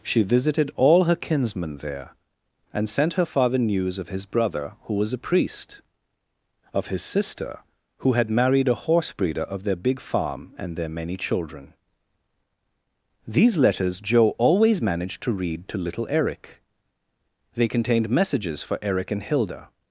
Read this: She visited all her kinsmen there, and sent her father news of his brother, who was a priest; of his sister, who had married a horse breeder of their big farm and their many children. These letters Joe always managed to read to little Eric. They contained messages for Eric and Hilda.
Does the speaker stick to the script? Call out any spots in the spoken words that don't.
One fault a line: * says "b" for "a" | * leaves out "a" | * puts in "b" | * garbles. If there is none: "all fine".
all fine